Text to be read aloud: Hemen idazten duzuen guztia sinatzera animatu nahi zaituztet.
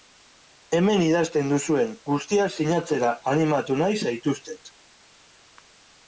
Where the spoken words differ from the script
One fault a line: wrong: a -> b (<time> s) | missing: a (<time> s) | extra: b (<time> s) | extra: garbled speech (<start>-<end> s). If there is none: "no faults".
no faults